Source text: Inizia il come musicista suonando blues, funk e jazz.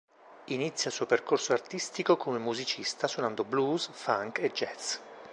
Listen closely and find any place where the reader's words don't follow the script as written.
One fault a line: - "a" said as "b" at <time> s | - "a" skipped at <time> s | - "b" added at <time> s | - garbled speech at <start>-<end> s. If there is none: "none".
- "suo percorso artistico" added at 0.9 s